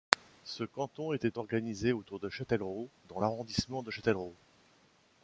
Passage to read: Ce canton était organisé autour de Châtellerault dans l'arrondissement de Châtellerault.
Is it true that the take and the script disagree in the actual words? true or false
false